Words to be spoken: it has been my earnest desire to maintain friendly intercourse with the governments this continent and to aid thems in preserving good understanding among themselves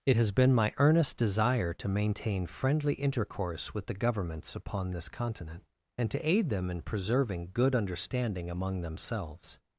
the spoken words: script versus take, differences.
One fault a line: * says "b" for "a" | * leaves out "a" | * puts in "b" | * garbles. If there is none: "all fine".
* puts in "upon"
* says "them" for "thems"